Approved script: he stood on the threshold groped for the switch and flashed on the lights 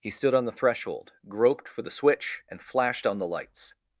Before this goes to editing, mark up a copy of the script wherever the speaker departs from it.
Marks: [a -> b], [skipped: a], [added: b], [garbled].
he stood on the threshold groped for the switch and flashed on the lights